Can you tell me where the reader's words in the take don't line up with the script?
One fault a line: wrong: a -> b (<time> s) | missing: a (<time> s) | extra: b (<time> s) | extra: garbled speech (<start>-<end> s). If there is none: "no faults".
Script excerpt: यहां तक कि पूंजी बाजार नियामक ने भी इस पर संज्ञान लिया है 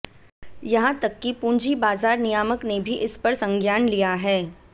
no faults